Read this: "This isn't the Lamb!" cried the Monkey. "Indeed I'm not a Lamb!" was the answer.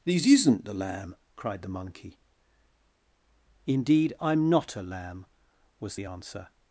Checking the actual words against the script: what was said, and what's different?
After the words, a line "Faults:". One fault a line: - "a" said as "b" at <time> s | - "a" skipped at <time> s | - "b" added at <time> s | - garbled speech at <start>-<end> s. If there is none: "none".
"This isn't the Lamb!" cried the Monkey. "Indeed I'm not a Lamb!" was the answer.
Faults:
none